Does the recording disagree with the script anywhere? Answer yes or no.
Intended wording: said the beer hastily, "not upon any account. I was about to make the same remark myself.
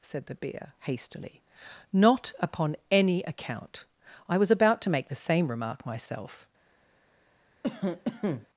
no